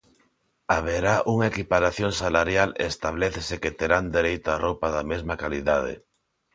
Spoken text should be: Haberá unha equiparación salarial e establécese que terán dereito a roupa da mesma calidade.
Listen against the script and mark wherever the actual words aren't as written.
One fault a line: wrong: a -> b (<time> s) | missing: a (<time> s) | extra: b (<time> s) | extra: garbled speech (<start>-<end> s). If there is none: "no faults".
no faults